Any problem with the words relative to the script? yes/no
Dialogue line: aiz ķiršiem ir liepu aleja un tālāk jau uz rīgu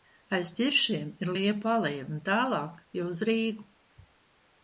no